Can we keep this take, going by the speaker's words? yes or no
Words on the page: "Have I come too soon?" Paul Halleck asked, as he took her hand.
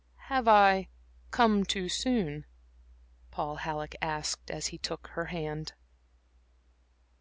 yes